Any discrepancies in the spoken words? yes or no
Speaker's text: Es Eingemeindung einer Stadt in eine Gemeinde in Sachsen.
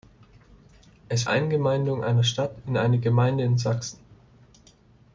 no